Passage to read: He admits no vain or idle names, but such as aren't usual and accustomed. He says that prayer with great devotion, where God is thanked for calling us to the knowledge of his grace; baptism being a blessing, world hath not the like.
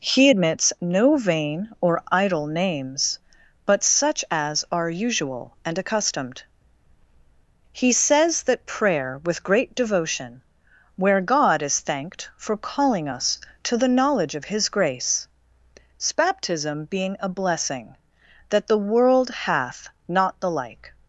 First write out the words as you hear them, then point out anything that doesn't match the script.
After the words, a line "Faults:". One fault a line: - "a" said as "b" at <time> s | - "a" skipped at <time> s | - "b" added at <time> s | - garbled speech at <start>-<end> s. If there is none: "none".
He admits no vain or idle names, but such as are usual and accustomed. He says that prayer with great devotion, where God is thanked for calling us to the knowledge of his grace; baptism being a blessing, that the world hath not the like.
Faults:
- "aren't" said as "are" at 4.7 s
- "that the" added at 18.5 s